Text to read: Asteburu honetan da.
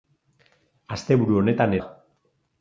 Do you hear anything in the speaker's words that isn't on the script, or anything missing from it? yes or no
no